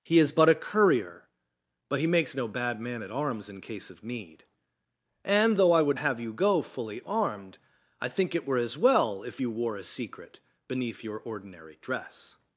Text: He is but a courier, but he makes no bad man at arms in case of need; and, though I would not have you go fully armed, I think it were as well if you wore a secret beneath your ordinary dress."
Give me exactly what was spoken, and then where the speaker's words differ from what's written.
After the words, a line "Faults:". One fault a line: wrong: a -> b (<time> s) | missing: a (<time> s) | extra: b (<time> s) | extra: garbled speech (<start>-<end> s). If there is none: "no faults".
He is but a courier, but he makes no bad man at arms in case of need; and, though I would have you go fully armed, I think it were as well if you wore a secret beneath your ordinary dress."
Faults:
missing: not (6.0 s)